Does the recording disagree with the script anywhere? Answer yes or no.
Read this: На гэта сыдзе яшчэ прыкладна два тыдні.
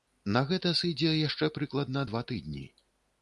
no